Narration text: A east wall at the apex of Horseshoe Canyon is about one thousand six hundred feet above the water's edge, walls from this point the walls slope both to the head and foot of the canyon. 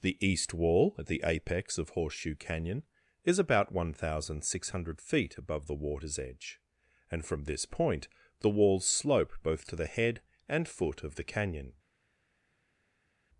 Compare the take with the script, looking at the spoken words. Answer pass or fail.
fail